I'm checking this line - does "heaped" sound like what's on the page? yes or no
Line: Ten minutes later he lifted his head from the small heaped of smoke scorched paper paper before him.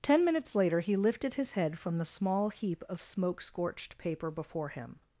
no